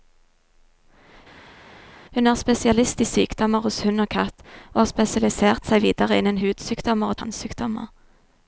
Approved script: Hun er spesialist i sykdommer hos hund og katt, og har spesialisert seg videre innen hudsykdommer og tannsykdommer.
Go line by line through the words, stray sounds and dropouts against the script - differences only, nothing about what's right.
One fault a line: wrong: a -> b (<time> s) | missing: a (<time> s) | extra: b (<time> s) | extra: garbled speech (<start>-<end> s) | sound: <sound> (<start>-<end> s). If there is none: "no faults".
no faults